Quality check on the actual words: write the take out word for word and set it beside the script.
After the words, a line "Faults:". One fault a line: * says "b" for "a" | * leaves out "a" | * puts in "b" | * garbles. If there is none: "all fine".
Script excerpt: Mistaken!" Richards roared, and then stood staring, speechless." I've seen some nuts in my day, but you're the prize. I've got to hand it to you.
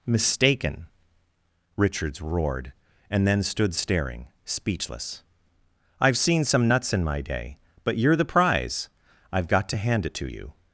Mistaken!" Richards roared, and then stood staring, speechless." I've seen some nuts in my day, but you're the prize. I've got to hand it to you.
Faults:
all fine